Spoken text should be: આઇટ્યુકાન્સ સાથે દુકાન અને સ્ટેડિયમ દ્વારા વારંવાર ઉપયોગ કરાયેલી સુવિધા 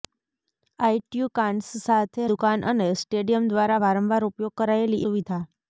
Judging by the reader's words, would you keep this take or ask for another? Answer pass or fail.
pass